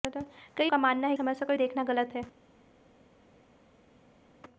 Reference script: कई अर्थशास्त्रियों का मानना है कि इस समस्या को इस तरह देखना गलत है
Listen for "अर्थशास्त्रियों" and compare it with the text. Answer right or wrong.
wrong